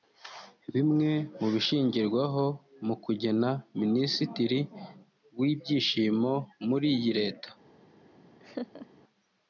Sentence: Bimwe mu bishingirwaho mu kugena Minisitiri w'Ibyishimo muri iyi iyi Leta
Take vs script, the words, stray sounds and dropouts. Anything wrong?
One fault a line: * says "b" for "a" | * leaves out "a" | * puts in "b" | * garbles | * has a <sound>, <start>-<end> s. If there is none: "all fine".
* leaves out "iyi"
* has a laugh, 8.4-8.9 s